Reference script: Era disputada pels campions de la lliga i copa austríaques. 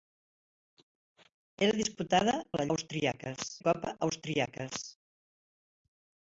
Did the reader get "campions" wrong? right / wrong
wrong